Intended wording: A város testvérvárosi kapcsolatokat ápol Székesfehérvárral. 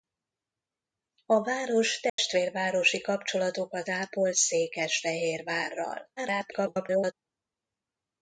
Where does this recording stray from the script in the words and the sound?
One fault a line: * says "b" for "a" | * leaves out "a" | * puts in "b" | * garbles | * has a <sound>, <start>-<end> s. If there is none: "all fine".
* has a dropout, 2.1-2.2 s
* garbles